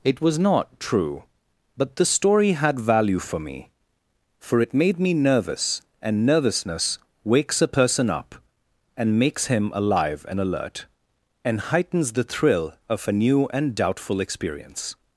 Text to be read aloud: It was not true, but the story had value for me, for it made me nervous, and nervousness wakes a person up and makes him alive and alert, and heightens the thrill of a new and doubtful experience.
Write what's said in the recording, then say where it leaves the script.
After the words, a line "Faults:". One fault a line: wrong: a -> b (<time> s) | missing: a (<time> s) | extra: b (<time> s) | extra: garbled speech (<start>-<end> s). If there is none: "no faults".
It was not true, but the story had value for me, for it made me nervous, and nervousness wakes a person up and makes him alive and alert, and heightens the thrill of a new and doubtful experience.
Faults:
no faults